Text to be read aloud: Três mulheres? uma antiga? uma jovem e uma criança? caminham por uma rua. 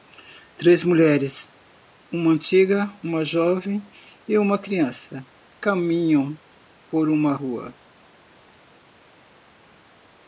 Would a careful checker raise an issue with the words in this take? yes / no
no